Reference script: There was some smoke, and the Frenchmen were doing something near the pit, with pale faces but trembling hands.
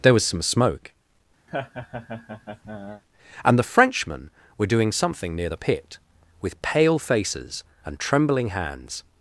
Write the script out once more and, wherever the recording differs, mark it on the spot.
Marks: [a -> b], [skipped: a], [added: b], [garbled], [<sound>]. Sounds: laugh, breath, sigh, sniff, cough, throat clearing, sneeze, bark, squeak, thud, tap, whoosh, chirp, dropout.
There was some smoke, [laugh] and the Frenchmen were doing something near the pit, with pale faces [but -> and] trembling hands.